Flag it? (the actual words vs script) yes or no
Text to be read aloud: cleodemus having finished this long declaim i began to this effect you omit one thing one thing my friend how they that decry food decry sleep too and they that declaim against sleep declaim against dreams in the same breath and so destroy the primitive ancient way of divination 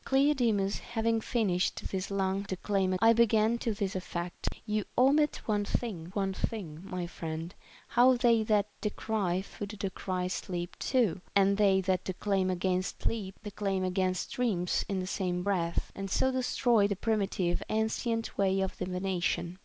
no